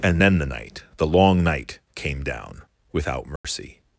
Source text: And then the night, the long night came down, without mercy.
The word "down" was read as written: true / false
true